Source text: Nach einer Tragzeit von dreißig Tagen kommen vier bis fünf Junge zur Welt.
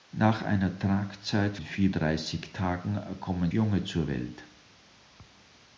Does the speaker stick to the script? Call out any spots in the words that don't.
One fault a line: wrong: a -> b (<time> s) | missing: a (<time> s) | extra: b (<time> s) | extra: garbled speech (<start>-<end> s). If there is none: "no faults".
wrong: von -> vier (1.6 s)
missing: vier bis fünf (3.5 s)